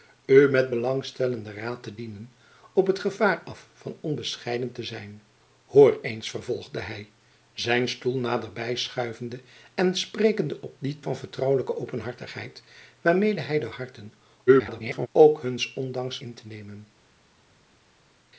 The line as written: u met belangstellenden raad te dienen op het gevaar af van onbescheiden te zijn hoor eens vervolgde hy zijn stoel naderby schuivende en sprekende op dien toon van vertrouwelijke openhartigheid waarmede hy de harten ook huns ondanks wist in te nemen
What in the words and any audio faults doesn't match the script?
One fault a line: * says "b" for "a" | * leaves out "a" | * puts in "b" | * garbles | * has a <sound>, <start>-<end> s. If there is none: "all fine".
* leaves out "toon"
* garbles
* leaves out "wist"